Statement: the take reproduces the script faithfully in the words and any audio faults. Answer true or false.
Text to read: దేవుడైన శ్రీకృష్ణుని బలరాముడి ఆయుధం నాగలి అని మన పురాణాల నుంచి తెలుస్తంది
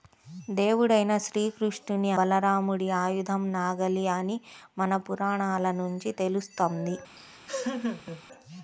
false